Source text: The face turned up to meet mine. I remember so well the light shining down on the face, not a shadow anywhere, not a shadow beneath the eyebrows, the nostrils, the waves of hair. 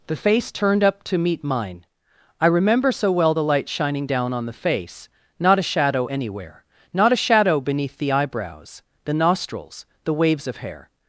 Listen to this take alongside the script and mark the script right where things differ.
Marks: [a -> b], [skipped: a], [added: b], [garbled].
The face turned up to meet mine. I remember so well the light shining down on the face, not a shadow anywhere, not a shadow beneath the eyebrows, the nostrils, the waves of hair.